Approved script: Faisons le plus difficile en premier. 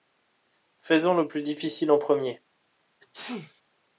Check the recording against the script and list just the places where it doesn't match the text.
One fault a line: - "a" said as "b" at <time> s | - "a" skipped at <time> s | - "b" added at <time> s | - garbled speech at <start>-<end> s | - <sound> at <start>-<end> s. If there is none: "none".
- sneeze at 3.0-3.6 s